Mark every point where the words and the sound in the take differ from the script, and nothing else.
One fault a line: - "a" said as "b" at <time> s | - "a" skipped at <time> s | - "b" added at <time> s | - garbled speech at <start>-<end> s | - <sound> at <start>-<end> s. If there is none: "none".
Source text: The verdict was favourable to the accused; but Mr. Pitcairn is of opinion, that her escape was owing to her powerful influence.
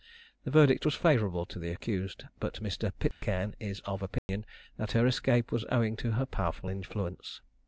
- dropout at 3.1-3.2 s
- dropout at 4.2-4.3 s